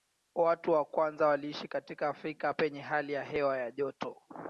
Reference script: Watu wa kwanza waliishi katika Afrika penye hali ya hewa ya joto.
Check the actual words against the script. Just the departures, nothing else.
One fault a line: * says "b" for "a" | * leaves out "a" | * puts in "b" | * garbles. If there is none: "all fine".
all fine